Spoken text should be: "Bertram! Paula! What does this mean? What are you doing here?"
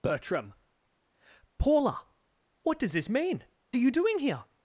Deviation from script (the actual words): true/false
true